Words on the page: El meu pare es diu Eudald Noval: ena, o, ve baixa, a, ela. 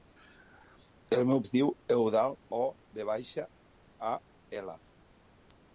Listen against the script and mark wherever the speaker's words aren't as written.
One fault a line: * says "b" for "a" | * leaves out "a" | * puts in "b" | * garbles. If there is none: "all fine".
* leaves out "pare"
* leaves out "Noval ena"